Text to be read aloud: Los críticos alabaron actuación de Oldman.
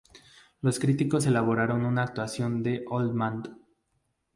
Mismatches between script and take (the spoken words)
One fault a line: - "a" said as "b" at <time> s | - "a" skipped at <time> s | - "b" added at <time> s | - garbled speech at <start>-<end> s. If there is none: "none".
- "la" added at 1.9 s